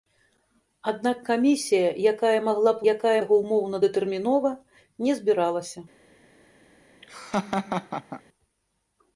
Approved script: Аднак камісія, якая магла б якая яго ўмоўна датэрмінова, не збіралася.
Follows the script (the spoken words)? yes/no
yes